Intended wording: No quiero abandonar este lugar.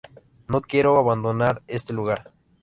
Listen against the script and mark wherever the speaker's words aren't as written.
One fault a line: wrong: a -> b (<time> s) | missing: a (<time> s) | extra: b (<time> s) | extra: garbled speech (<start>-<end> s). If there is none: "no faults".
no faults